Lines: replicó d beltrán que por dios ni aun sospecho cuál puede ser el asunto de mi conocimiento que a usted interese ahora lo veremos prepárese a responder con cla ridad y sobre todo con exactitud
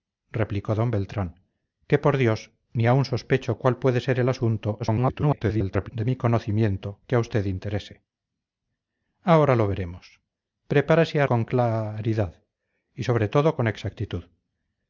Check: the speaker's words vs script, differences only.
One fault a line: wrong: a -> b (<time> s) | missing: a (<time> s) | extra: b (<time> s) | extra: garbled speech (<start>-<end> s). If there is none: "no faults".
extra: garbled speech (4.8-5.9 s)
missing: responder (11.3 s)